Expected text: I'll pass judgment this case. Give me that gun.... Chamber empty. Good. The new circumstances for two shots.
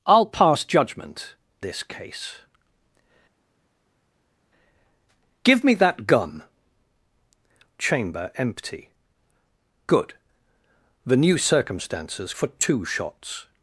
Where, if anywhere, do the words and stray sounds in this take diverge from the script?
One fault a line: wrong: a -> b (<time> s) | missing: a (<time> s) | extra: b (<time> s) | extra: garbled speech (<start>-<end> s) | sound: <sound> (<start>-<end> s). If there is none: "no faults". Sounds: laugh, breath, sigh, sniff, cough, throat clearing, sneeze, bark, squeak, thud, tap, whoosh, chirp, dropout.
no faults